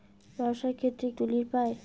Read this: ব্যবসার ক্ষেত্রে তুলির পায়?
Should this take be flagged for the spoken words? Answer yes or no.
no